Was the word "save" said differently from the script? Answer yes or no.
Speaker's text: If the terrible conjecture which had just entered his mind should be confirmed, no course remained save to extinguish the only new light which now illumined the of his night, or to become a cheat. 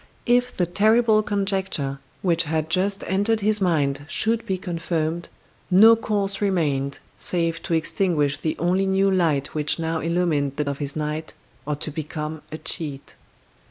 no